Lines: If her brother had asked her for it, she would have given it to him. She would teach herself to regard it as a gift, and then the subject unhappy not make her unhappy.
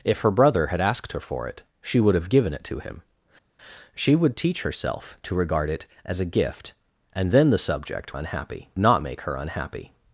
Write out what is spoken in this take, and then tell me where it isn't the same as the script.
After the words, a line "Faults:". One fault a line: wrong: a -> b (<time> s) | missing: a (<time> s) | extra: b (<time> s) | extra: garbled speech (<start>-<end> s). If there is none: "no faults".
If her brother had asked her for it, she would have given it to him. She would teach herself to regard it as a gift, and then the subject unhappy not make her unhappy.
Faults:
no faults